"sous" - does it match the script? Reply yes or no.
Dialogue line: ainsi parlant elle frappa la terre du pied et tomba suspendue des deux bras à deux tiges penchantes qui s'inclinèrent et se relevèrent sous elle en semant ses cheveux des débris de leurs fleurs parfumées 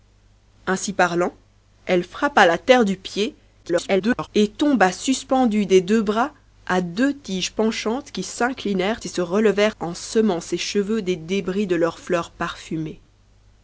no